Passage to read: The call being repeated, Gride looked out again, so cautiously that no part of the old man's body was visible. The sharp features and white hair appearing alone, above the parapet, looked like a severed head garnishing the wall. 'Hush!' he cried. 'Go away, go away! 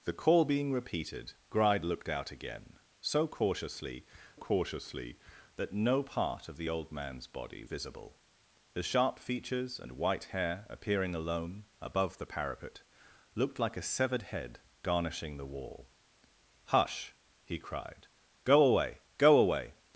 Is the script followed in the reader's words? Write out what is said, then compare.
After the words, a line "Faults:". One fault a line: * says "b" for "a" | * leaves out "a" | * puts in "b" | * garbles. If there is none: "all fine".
The call being repeated, Gride looked out again, so cautiously cautiously that no part of the old man's body visible. The sharp features and white hair appearing alone, above the parapet, looked like a severed head garnishing the wall. 'Hush!' he cried. 'Go away, go away!
Faults:
* puts in "cautiously"
* leaves out "was"